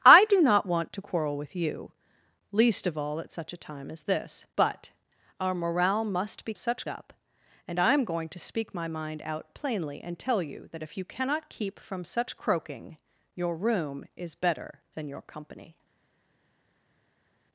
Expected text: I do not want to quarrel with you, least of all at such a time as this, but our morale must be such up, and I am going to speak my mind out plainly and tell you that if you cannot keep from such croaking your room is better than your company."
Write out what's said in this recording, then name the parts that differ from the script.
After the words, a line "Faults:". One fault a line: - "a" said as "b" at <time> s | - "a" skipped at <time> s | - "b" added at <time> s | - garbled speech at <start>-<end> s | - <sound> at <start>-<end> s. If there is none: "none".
I do not want to quarrel with you, least of all at such a time as this, but our morale must be such up, and I am going to speak my mind out plainly and tell you that if you cannot keep from such croaking your room is better than your company."
Faults:
none